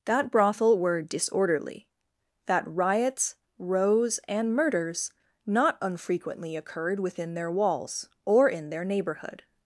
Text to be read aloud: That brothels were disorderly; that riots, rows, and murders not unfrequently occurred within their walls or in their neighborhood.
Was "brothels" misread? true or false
true